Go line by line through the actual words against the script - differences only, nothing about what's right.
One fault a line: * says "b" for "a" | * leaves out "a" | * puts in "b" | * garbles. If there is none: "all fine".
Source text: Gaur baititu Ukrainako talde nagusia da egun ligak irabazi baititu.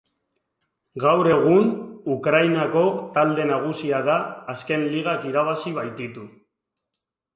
* says "egun" for "baititu"
* says "azken" for "egun"